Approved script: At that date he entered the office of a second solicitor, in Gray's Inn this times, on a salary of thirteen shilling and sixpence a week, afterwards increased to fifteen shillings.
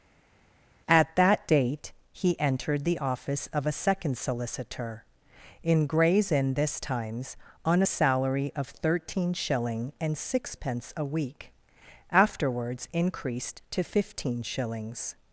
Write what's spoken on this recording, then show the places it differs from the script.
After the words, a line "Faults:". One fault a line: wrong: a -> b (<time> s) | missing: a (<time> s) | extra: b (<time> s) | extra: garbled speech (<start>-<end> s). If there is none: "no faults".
At that date he entered the office of a second solicitor, in Gray's Inn this times, on a salary of thirteen shilling and sixpence a week, afterwards increased to fifteen shillings.
Faults:
no faults